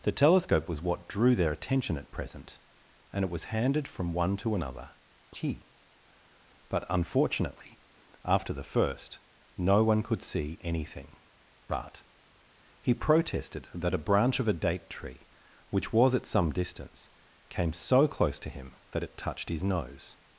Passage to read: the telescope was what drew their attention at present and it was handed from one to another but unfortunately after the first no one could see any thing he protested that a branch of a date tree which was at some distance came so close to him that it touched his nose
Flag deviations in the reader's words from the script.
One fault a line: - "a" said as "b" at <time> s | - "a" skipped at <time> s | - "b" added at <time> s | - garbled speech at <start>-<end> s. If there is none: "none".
- "t" added at 5.3 s
- "any thing" said as "anything but" at 10.6 s